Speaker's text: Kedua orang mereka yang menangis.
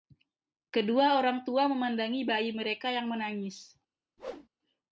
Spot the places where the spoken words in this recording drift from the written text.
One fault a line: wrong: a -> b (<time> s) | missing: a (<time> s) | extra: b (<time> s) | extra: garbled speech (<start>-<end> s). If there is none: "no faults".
extra: tua memandangi bayi (1.4 s)